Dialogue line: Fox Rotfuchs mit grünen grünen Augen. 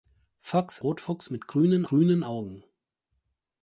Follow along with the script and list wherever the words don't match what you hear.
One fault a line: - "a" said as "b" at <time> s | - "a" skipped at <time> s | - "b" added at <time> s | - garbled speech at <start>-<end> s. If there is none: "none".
none